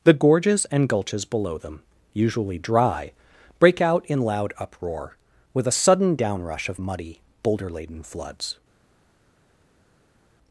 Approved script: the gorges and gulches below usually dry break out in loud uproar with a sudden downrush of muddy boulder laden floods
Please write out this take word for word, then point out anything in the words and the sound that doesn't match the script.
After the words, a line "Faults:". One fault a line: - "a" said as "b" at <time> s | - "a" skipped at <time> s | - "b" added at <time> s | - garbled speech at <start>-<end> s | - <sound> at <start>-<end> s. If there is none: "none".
the gorges and gulches below them usually dry break out in loud uproar with a sudden downrush of muddy boulder laden floods
Faults:
- "them" added at 1.6 s